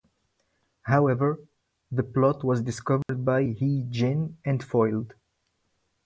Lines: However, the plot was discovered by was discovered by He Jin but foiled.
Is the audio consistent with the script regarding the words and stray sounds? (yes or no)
no